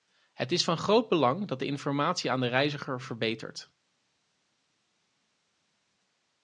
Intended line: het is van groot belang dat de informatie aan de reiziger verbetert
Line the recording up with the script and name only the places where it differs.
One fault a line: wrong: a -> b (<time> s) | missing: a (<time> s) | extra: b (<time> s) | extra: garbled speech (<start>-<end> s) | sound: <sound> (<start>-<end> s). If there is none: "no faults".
no faults